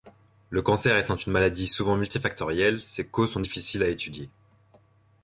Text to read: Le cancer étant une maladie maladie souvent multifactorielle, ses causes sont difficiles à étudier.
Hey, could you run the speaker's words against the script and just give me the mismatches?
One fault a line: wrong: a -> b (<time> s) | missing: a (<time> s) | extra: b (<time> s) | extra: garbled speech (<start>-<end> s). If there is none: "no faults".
missing: maladie (1.7 s)